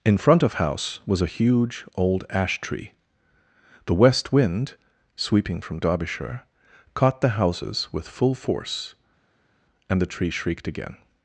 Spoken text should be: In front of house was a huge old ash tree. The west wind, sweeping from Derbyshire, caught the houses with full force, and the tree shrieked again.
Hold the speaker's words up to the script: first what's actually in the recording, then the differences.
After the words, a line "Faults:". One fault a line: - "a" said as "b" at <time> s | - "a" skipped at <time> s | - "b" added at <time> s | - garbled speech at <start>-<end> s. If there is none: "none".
In front of house was a huge old ash tree. The west wind, sweeping from Derbyshire, caught the houses with full force, and the tree shrieked again.
Faults:
none